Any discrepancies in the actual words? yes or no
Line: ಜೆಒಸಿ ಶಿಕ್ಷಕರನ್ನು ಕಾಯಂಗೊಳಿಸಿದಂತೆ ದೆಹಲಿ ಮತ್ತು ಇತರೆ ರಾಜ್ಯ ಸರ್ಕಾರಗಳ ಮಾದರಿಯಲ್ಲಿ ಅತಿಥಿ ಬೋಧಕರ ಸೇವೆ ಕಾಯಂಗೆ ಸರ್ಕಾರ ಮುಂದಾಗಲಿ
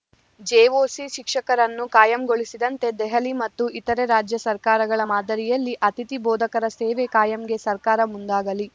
no